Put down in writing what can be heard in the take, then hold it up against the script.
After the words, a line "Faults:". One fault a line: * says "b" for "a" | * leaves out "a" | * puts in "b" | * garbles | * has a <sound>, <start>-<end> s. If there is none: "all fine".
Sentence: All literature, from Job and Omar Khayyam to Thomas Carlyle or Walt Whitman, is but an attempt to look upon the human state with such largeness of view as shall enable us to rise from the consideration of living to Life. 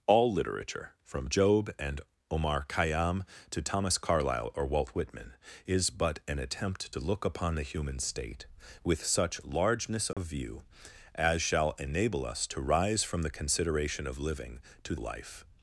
All literature, from Job and Omar Khayyam to Thomas Carlyle or Walt Whitman, is but an attempt to look upon the human state with such largeness of view as shall enable us to rise from the consideration of living to Life.
Faults:
* has a dropout, 10.1-10.2 s